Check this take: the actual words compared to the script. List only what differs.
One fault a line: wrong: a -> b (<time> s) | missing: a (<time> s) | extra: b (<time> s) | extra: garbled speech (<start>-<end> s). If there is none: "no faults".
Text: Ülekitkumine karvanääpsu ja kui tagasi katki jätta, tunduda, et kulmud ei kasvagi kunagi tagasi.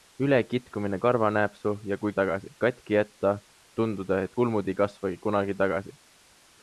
no faults